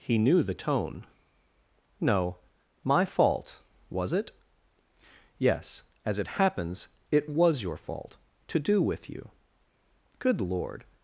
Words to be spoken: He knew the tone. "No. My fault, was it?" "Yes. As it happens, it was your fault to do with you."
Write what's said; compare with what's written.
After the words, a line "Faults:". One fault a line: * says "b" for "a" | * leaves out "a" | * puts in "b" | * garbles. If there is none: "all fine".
He knew the tone. "No. My fault, was it?" "Yes. As it happens, it was your fault to do with you." "Good lord
Faults:
* puts in "Good lord"